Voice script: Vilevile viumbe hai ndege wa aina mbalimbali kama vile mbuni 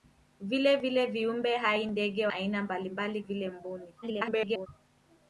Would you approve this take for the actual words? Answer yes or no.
no